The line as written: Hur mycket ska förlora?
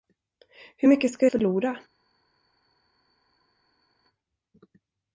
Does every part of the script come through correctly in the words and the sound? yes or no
yes